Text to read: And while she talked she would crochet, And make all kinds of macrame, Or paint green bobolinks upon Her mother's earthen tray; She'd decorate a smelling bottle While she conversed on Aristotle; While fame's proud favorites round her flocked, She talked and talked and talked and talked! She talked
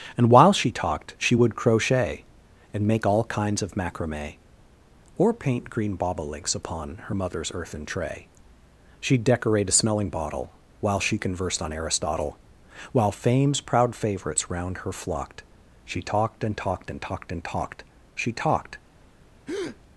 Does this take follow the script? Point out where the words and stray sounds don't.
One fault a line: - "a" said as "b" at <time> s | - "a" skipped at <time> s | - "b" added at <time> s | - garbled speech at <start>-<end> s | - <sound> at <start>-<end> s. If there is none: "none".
- breath at 19.5-19.8 s